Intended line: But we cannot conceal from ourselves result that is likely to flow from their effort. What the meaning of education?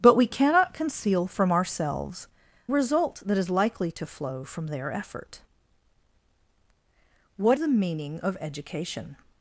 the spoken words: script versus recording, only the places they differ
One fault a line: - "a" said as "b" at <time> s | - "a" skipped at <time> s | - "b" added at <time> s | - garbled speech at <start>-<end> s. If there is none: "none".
none